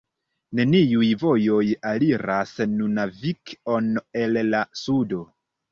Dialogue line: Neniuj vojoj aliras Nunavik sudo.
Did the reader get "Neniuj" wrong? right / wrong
right